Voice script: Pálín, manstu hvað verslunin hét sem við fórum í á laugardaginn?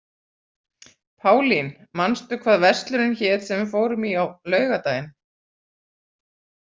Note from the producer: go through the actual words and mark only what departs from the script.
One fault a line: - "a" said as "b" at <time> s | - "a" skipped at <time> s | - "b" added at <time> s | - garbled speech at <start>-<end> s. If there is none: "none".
none